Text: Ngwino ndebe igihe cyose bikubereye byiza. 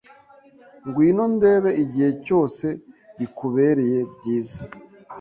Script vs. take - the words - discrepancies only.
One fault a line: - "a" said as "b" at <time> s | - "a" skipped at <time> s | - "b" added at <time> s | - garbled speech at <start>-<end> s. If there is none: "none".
none